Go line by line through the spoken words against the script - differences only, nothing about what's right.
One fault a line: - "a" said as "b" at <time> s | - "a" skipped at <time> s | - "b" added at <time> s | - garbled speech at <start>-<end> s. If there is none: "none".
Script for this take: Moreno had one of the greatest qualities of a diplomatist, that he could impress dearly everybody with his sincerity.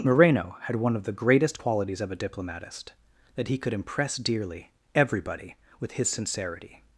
none